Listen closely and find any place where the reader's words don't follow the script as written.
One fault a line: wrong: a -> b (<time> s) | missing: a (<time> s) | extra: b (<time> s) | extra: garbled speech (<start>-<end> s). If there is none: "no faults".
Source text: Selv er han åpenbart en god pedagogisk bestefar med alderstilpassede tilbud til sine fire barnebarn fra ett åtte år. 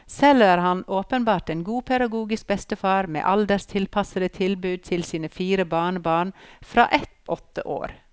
no faults